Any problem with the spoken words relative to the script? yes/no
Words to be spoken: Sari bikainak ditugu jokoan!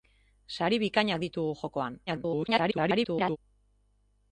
yes